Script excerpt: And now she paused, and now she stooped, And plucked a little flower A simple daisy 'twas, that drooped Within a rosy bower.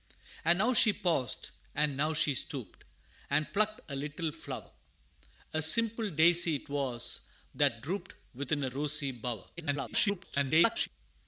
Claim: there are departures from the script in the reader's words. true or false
true